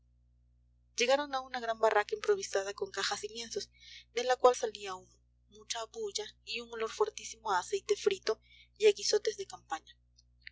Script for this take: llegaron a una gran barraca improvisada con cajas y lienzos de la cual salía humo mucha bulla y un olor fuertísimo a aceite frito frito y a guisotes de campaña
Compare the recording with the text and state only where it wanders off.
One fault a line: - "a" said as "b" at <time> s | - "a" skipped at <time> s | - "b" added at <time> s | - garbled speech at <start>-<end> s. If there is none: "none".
- "frito" skipped at 8.4 s